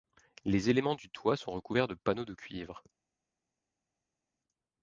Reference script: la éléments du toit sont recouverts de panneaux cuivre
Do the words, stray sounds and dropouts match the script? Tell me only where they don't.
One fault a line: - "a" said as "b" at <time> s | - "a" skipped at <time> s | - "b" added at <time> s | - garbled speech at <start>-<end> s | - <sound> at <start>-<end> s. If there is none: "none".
- "la" said as "les" at 0.5 s
- "de" added at 2.2 s